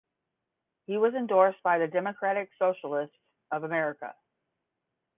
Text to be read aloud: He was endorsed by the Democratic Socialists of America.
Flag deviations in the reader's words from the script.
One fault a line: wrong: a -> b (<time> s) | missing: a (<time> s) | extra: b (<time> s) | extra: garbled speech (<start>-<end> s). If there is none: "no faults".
no faults